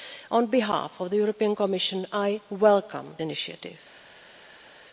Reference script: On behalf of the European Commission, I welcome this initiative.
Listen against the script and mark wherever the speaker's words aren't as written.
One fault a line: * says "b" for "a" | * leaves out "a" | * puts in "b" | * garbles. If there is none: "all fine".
* leaves out "this"